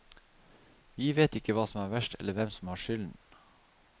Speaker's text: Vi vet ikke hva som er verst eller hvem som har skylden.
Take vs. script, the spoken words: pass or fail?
pass